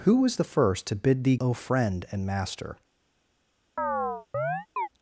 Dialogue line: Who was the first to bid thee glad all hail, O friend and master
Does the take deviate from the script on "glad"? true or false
true